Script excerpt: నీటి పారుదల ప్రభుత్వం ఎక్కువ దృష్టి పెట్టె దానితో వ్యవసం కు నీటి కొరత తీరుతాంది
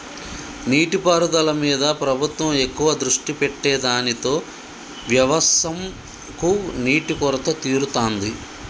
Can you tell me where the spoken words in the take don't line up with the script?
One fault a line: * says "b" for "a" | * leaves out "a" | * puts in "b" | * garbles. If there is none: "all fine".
* puts in "మీద"